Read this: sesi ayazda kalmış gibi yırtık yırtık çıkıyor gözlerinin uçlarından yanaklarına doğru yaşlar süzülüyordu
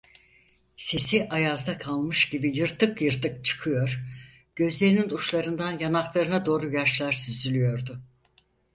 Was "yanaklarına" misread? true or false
false